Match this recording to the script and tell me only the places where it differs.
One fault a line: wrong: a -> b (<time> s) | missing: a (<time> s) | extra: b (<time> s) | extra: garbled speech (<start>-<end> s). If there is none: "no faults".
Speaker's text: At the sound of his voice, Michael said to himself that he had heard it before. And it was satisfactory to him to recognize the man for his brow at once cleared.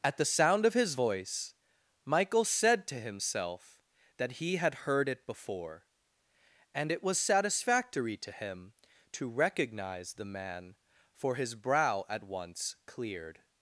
no faults